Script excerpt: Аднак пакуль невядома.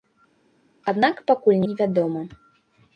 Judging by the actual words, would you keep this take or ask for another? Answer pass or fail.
pass